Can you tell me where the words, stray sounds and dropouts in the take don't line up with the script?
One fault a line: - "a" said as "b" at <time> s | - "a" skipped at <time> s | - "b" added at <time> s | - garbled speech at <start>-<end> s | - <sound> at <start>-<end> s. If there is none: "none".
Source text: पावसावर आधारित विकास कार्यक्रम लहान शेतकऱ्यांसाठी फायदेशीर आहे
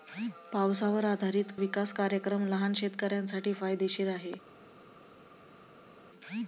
none